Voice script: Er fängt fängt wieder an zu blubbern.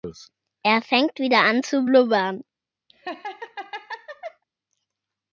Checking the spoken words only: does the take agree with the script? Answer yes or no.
no